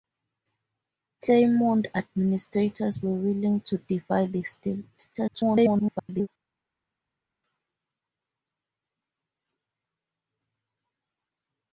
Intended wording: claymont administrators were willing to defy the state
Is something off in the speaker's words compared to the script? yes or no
yes